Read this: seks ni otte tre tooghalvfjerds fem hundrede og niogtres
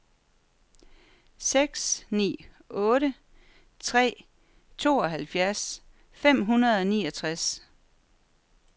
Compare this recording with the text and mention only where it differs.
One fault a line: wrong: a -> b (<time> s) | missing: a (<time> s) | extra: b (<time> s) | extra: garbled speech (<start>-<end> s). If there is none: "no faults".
no faults